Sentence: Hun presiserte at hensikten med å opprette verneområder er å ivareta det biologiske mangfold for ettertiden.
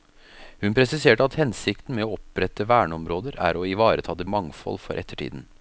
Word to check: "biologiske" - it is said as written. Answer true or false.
false